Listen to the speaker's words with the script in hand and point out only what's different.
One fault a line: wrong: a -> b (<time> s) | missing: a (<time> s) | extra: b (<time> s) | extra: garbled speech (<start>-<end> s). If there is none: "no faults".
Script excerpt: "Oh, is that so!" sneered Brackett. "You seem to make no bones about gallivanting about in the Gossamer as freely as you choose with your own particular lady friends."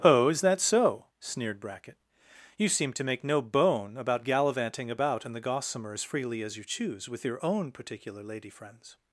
wrong: bones -> bone (3.4 s)